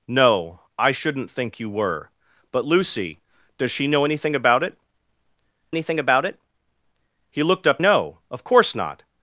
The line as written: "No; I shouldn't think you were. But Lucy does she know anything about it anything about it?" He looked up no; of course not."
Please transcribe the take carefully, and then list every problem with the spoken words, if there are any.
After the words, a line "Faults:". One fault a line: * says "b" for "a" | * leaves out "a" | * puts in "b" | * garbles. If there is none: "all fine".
"No; I shouldn't think you were. But Lucy does she know anything about it anything about it?" He looked up no; of course not."
Faults:
all fine